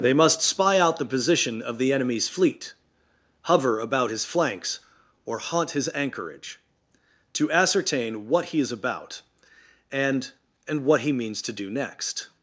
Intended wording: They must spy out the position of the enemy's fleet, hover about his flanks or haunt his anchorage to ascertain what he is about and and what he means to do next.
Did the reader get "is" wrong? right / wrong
right